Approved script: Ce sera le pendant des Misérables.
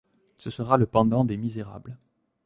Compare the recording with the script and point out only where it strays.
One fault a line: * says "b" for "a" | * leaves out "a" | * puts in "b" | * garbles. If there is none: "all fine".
all fine